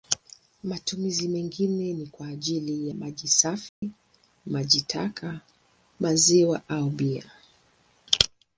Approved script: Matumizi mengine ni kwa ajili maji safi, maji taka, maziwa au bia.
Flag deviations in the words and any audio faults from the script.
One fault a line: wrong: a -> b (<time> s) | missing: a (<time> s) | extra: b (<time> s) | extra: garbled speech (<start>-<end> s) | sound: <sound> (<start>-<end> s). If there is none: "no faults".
sound: dropout (3.7-3.8 s)